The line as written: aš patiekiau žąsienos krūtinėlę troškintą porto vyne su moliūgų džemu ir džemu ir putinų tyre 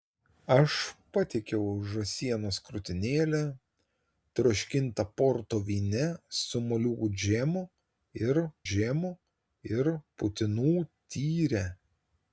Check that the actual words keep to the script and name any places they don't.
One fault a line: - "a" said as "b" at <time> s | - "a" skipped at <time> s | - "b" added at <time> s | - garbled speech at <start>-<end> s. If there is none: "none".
none